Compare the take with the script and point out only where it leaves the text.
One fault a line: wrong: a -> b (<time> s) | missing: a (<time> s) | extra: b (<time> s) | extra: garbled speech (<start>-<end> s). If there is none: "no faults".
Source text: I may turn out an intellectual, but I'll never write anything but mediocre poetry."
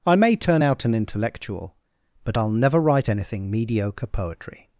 missing: but (3.5 s)